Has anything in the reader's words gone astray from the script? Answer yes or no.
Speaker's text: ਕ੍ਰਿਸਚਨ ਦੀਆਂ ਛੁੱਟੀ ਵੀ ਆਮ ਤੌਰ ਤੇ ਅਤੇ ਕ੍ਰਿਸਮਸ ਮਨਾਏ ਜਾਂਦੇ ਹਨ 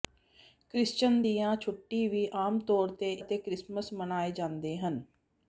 no